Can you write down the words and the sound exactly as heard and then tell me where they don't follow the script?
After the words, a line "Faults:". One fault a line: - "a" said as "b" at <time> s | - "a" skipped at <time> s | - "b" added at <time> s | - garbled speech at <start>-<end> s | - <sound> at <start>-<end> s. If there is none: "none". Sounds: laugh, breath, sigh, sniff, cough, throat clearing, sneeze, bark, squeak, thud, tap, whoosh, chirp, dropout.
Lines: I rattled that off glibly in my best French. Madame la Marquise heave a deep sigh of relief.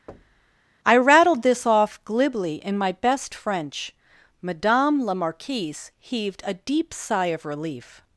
I rattled this off glibly in my best French. Madame la Marquise heaved a deep sigh of relief.
Faults:
- thud at 0.1-0.6 s
- "that" said as "this" at 1.4 s
- "heave" said as "heaved" at 6.0 s